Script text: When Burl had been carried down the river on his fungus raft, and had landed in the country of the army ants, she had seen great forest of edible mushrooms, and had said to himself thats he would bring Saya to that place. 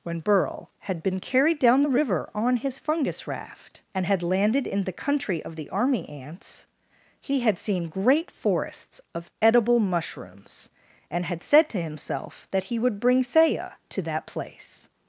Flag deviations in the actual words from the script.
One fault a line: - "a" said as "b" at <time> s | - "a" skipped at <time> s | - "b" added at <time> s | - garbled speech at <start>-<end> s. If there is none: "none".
- "she" said as "he" at 7.2 s
- "forest" said as "forests" at 8.3 s
- "thats" said as "that" at 12.5 s